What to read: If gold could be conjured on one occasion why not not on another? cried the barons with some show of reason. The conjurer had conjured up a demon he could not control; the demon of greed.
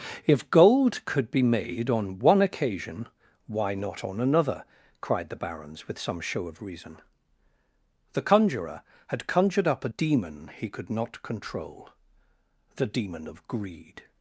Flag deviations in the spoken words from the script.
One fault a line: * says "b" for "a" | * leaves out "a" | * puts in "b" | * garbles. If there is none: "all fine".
* says "made" for "conjured"
* leaves out "not"